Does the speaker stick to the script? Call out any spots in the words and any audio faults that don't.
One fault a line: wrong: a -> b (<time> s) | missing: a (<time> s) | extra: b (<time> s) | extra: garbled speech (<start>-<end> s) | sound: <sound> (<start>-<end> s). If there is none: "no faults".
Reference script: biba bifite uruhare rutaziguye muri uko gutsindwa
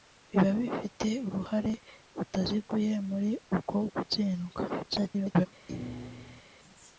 extra: garbled speech (4.7-5.5 s)
sound: thud (5.7-6.4 s)